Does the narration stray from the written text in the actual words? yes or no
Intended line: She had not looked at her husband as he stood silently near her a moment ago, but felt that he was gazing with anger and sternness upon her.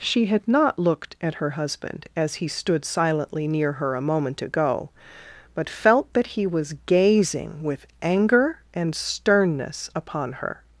no